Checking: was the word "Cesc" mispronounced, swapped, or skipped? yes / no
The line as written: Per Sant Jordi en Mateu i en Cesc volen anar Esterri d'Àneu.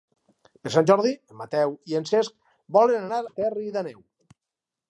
no